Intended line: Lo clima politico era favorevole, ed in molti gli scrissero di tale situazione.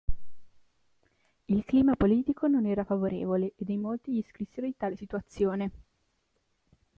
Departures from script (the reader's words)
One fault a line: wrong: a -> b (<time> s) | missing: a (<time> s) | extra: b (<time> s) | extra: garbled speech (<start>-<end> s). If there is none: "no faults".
wrong: Lo -> Il (1.4 s)
extra: non (2.5 s)